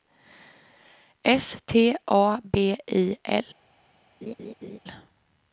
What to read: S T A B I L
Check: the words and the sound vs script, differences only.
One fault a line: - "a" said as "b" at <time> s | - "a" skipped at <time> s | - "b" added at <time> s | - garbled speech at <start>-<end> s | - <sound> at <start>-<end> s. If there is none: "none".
- laugh at 4.2-4.8 s